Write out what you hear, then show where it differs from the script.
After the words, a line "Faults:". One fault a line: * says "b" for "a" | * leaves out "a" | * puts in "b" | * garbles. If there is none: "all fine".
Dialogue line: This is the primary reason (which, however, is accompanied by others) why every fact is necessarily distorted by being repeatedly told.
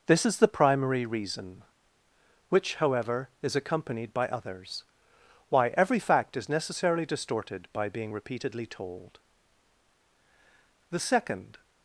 This is the primary reason (which, however, is accompanied by others) why every fact is necessarily distorted by being repeatedly told. The second
Faults:
* puts in "The second"